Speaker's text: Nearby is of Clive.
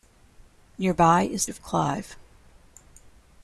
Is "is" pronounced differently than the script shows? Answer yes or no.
no